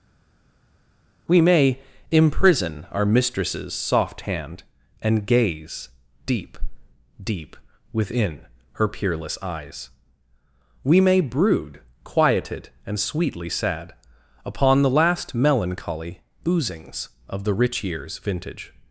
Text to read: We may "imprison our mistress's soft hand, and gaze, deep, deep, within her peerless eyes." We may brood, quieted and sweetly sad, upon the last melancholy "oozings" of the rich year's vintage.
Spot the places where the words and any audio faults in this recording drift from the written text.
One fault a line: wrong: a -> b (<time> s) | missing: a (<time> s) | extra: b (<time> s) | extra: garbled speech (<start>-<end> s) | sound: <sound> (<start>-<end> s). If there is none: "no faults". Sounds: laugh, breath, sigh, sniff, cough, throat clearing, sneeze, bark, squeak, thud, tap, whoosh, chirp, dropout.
no faults